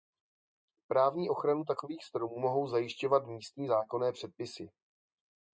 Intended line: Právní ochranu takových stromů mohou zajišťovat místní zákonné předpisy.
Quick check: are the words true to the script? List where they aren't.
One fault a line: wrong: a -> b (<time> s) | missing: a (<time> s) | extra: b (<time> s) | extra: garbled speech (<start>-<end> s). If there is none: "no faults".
no faults